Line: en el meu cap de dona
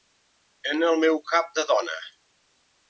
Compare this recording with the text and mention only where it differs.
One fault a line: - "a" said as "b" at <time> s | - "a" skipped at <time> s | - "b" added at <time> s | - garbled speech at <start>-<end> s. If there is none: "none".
none